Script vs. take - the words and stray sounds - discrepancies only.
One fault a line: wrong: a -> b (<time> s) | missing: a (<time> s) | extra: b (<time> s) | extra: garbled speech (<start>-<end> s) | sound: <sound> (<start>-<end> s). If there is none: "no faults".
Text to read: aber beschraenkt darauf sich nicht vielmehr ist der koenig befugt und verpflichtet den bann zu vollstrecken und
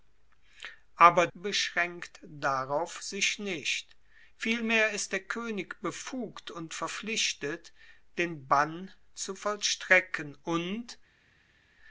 no faults